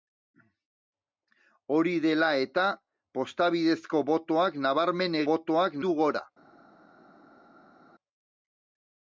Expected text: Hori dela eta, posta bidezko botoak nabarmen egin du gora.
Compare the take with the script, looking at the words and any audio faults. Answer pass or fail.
fail